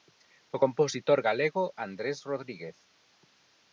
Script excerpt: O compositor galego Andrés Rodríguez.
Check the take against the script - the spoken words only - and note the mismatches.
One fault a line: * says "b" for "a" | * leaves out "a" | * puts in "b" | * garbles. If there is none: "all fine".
all fine